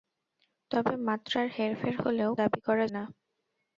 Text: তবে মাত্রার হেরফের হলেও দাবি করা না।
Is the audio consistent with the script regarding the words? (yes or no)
yes